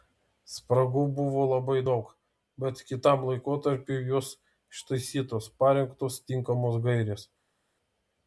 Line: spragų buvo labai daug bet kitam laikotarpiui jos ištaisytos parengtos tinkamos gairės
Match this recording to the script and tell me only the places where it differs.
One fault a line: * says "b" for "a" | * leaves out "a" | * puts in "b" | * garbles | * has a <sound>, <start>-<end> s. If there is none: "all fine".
all fine